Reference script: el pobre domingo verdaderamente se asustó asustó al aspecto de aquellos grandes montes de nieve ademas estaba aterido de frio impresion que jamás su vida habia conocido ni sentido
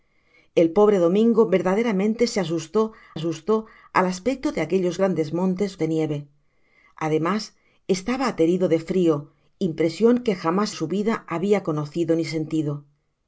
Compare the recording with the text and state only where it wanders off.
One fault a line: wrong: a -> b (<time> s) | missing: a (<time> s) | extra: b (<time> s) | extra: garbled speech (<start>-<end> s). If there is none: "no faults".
no faults